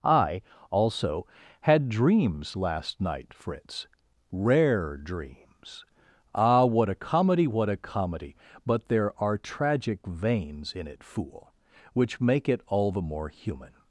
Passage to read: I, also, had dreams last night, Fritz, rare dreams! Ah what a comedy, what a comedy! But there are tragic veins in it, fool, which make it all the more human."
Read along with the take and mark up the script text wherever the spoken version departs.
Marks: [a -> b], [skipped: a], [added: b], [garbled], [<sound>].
I, also, had dreams last night, Fritz, rare dreams! Ah what a comedy, what a comedy! But there are tragic veins in it, fool, which make it all the more human."